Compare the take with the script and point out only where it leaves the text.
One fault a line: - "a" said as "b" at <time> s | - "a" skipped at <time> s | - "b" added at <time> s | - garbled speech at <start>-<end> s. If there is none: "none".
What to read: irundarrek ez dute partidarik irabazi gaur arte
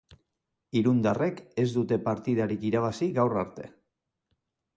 none